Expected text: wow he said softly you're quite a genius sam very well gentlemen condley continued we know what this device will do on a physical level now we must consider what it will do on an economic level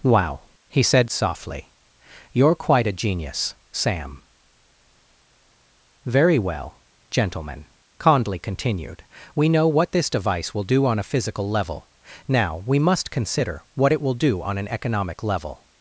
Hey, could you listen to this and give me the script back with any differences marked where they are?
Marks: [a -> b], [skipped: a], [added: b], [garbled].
wow he said softly you're quite a genius sam very well gentlemen condley continued we know what this device will do on a physical level now we must consider what it will do on an economic level